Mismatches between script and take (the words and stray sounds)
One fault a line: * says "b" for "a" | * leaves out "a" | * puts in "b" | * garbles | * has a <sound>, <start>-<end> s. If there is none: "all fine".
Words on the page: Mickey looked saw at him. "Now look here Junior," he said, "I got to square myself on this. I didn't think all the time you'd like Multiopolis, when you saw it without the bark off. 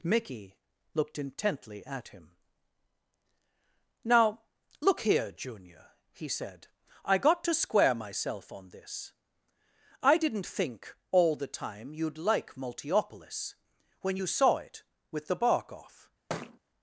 * says "intently" for "saw"
* says "with" for "without"
* has a thud, 16.3-16.6 s